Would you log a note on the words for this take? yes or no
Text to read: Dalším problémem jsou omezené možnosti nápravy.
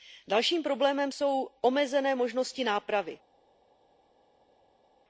no